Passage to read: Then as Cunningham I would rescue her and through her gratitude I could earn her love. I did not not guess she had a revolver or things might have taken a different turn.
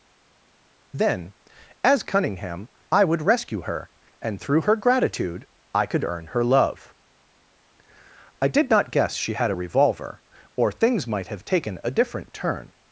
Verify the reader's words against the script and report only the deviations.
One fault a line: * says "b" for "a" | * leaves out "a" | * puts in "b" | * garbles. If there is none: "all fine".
* leaves out "not"